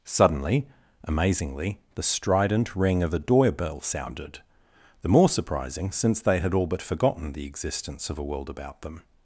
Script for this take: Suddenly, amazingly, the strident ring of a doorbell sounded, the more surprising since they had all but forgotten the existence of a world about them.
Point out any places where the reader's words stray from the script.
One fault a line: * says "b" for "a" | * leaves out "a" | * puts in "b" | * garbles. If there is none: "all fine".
all fine